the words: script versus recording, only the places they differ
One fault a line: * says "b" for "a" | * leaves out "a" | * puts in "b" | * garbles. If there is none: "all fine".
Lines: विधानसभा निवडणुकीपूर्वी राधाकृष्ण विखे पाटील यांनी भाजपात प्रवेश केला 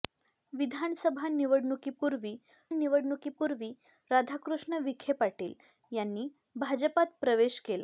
* puts in "निवडणुकीपूर्वी"